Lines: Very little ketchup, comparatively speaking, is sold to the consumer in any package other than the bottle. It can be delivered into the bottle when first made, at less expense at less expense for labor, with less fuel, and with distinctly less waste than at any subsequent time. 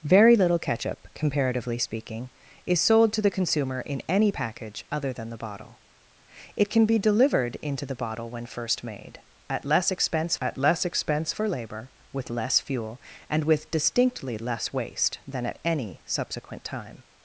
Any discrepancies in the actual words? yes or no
no